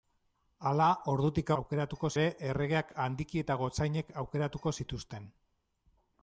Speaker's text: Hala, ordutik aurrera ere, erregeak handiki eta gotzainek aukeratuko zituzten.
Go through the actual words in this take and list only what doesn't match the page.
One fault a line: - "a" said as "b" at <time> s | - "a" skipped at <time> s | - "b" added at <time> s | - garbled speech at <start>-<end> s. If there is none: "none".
- "aurrera" said as "aukeratuko" at 1.6 s